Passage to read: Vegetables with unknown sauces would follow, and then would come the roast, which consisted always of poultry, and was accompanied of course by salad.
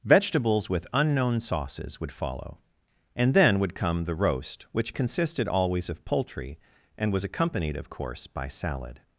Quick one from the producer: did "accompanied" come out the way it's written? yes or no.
yes